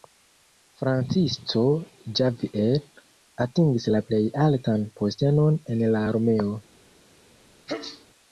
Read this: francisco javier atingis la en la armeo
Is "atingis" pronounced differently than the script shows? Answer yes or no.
no